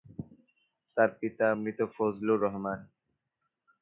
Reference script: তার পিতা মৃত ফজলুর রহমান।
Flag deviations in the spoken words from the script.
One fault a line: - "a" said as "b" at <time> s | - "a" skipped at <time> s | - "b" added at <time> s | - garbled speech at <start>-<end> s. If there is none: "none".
none